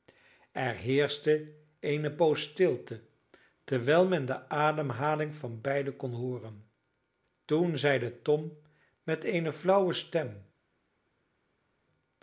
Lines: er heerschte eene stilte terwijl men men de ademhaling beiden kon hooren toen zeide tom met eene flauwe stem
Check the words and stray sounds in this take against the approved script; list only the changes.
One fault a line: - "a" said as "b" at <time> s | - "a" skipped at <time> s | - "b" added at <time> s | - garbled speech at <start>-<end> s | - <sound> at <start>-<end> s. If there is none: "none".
- "poos" added at 2.2 s
- "men" skipped at 4.3 s
- "van" added at 5.4 s